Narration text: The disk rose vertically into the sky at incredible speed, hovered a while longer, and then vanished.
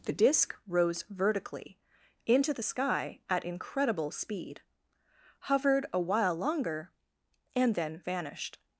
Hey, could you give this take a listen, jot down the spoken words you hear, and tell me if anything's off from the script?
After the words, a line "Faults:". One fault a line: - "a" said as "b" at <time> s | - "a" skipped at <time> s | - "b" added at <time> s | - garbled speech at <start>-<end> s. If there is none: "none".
The disk rose vertically into the sky at incredible speed, hovered a while longer, and then vanished.
Faults:
none